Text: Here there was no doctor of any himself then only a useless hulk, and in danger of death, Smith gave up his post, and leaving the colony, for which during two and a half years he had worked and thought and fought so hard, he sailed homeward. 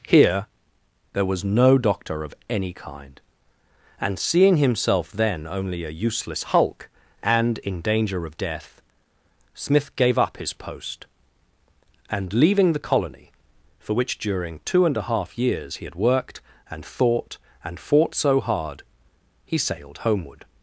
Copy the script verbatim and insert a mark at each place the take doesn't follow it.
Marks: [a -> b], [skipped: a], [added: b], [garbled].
Here there was no doctor of any [added: kind and seeing] himself then only a useless hulk, and in danger of death, Smith gave up his post, and leaving the colony, for which during two and a half years he had worked and thought and fought so hard, he sailed homeward.